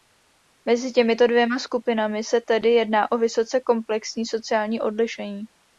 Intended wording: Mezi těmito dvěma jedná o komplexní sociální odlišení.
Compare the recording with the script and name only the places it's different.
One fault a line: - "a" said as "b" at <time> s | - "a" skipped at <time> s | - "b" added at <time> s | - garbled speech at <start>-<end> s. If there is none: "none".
- "skupinami se tedy" added at 1.6 s
- "vysoce" added at 3.2 s